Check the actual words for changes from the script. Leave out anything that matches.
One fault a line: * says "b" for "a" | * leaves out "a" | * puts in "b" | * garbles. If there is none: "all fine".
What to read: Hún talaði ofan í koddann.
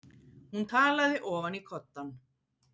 all fine